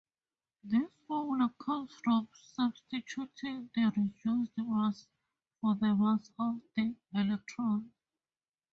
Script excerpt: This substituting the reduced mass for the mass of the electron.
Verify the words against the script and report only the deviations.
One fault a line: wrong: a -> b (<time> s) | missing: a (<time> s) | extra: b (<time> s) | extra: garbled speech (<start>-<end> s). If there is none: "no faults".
extra: formula comes from (1.1 s)